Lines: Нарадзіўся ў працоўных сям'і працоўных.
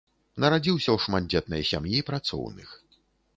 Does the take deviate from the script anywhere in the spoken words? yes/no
yes